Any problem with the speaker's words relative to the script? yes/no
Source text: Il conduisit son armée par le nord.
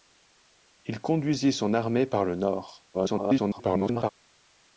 yes